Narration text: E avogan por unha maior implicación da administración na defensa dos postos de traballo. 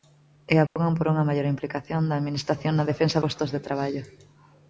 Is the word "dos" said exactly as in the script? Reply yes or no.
no